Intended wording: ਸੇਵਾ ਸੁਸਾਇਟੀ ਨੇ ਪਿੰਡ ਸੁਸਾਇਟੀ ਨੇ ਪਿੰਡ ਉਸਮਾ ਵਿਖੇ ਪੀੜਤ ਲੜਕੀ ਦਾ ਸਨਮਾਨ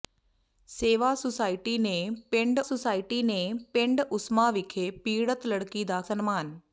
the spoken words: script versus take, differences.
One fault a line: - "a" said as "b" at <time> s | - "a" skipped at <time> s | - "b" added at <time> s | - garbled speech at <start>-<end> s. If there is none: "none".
none